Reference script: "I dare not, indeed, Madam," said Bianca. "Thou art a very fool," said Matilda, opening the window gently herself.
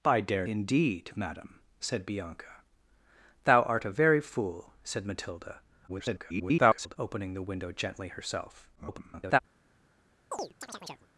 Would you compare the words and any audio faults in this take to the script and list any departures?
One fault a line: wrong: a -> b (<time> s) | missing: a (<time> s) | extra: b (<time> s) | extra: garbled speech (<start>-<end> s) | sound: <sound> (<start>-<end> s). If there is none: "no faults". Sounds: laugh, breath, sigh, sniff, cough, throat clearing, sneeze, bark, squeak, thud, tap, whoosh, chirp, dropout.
missing: not (0.5 s)
extra: garbled speech (5.9-7.0 s)
extra: garbled speech (8.8-9.4 s)
sound: chirp (10.3-11.1 s)